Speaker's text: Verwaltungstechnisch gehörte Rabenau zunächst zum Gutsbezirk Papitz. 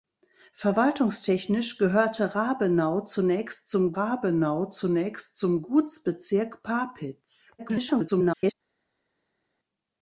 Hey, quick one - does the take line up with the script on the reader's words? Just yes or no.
no